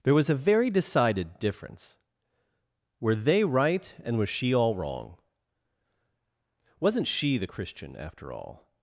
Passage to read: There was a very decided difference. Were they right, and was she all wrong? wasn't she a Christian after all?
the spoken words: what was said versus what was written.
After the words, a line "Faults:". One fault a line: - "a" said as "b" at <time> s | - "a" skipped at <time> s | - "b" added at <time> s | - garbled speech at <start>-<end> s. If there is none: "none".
There was a very decided difference. Were they right, and was she all wrong? wasn't she the Christian after all?
Faults:
- "a" said as "the" at 7.4 s